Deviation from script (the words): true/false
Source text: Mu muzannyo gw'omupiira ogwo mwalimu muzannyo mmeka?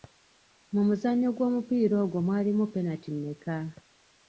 true